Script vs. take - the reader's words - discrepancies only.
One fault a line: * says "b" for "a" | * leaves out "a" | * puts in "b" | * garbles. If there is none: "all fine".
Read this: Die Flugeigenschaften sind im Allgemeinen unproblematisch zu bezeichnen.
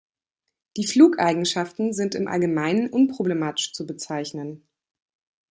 all fine